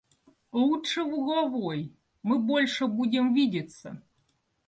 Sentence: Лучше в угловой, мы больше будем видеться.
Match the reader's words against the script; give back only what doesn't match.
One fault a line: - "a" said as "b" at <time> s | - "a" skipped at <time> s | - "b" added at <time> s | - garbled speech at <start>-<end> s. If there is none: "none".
none